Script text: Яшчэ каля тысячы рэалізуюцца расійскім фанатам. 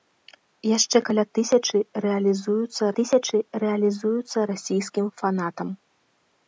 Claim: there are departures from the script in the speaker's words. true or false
true